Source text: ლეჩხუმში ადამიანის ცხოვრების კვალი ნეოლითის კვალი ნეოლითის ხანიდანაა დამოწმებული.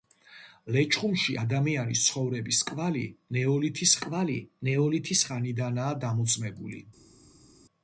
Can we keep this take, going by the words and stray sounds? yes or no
yes